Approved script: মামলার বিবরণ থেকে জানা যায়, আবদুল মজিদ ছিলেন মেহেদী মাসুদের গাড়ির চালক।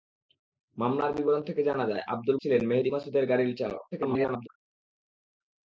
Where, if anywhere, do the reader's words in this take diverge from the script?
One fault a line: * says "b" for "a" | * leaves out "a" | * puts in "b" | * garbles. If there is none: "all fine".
* leaves out "মজিদ"
* garbles